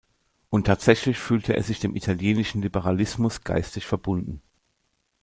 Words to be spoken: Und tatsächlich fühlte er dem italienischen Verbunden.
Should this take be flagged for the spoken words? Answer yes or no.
yes